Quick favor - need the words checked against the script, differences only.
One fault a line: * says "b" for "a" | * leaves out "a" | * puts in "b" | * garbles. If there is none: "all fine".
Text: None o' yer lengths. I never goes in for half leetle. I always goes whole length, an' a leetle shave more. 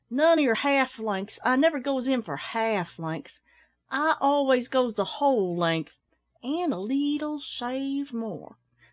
* puts in "half"
* says "lengths" for "leetle"
* puts in "the"